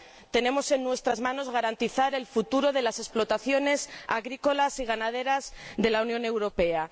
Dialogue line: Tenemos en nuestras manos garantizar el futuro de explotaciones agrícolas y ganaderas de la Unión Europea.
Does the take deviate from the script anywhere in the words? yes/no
yes